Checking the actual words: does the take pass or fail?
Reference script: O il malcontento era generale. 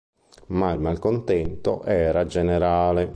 fail